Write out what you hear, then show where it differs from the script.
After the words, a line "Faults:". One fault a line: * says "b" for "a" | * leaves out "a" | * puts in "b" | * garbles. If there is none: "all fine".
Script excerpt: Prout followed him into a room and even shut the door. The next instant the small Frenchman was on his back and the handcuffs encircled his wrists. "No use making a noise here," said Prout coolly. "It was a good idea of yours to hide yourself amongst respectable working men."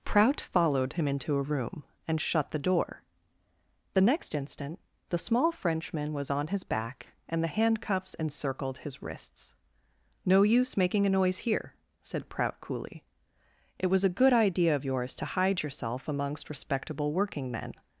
Prout followed him into a room and shut the door. The next instant the small Frenchman was on his back and the handcuffs encircled his wrists. "No use making a noise here," said Prout coolly. "It was a good idea of yours to hide yourself amongst respectable working men."
Faults:
* leaves out "even"